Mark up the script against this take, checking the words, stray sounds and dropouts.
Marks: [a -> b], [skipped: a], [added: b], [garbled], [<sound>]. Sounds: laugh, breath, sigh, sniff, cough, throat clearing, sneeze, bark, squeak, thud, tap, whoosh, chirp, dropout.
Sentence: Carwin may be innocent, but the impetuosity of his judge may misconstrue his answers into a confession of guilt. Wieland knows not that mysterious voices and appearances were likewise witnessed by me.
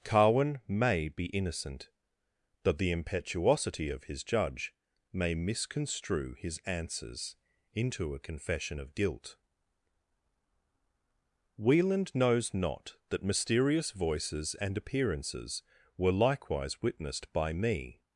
Carwin may be innocent, but the impetuosity of his judge may misconstrue his answers into a confession of guilt. Wieland knows not that mysterious voices and appearances were likewise witnessed by me.